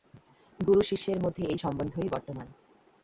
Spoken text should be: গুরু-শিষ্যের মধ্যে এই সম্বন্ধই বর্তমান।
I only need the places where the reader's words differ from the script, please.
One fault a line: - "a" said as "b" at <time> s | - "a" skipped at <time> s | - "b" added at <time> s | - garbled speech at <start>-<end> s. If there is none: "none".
none